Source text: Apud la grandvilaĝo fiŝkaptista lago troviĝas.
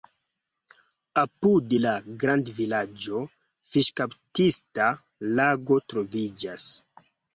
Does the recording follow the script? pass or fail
pass